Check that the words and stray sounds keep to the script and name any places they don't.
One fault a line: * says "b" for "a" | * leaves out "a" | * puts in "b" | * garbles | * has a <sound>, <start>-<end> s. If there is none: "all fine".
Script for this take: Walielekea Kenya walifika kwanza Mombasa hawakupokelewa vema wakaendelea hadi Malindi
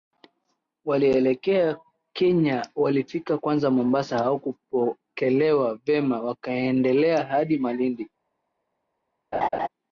* has a laugh, 9.3-9.7 s